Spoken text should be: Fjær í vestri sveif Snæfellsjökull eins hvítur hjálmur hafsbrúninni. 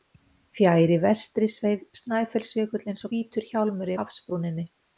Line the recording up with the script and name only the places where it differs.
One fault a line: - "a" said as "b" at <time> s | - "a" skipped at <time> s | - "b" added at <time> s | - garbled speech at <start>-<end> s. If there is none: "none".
none